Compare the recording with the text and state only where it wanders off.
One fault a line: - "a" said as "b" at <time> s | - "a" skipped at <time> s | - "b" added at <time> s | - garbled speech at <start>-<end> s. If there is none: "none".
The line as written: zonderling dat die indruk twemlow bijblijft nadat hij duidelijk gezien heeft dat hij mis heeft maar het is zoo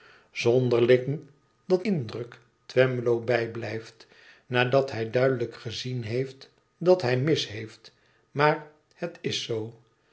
- "die" skipped at 1.9 s